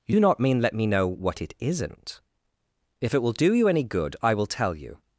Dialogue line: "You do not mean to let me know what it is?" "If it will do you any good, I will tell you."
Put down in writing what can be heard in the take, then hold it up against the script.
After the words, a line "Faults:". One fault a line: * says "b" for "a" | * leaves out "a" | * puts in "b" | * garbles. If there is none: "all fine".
"You do not mean let me know what it isn't?" "If it will do you any good, I will tell you."
Faults:
* leaves out "to"
* says "isn't" for "is"